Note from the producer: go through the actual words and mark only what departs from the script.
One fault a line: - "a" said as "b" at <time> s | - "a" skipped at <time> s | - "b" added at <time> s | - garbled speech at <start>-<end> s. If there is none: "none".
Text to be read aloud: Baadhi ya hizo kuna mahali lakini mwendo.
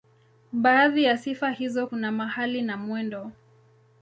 - "sifa" added at 1.2 s
- "lakini" said as "na" at 2.6 s